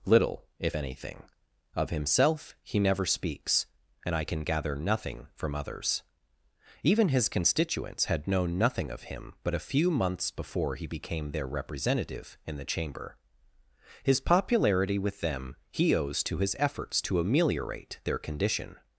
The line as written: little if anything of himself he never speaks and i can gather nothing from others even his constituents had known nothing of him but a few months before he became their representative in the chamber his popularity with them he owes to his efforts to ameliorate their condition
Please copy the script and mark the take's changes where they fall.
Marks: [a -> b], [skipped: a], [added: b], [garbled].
little if anything of himself he never speaks and i can gather nothing from others even his constituents had known nothing of him but a few months before he became their representative in the chamber his popularity with them he owes to his efforts to ameliorate their condition